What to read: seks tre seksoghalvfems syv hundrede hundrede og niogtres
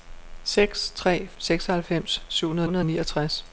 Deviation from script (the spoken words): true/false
false